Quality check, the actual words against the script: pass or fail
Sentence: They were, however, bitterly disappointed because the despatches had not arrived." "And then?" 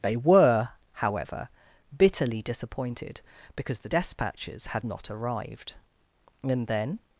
pass